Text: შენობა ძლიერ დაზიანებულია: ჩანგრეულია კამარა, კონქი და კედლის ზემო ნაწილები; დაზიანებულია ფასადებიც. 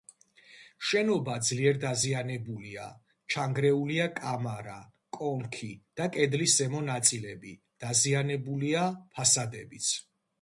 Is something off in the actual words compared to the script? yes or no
no